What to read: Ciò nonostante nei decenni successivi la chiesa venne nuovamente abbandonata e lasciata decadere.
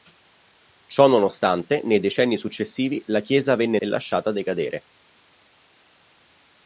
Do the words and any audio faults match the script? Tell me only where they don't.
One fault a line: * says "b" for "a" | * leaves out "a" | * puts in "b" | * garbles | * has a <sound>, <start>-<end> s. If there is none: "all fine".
* leaves out "nuovamente abbandonata"